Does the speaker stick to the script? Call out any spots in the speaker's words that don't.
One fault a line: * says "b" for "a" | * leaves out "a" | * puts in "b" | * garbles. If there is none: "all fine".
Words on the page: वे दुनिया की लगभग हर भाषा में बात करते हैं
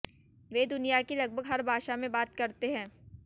all fine